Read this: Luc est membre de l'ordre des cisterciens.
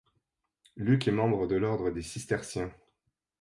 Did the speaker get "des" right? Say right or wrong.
right